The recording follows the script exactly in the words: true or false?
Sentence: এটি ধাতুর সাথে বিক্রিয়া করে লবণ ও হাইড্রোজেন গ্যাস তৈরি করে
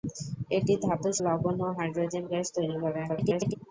false